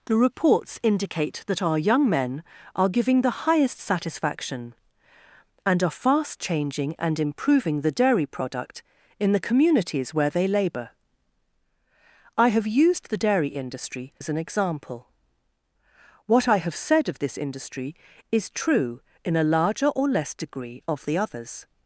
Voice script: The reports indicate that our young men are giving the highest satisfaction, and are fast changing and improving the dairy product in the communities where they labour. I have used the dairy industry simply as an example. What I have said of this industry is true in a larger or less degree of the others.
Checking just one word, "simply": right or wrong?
wrong